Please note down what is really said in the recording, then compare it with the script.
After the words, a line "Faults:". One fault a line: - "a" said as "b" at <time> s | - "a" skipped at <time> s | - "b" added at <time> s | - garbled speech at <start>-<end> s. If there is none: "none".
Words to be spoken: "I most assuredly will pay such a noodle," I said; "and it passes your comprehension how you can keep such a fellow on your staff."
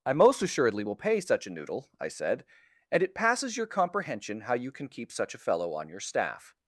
"I most assuredly will pay such a noodle," I said; "and it passes your comprehension how you can keep such a fellow on your staff."
Faults:
none